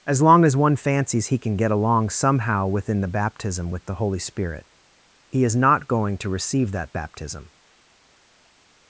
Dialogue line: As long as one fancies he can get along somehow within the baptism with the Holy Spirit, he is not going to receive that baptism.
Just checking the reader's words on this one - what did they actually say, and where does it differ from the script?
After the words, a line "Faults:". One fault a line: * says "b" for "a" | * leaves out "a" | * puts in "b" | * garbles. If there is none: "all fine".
As long as one fancies he can get along somehow within the baptism with the Holy Spirit, he is not going to receive that baptism.
Faults:
all fine